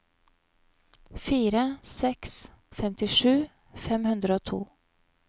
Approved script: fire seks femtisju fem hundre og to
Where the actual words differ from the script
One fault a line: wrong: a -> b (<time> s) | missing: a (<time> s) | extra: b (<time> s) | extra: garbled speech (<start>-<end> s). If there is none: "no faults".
no faults